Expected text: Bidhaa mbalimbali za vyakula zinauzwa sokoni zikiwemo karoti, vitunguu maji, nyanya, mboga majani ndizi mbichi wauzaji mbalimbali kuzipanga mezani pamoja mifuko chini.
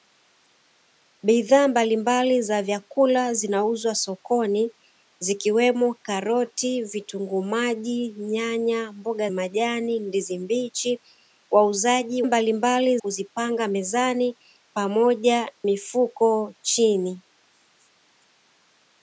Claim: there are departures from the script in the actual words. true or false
false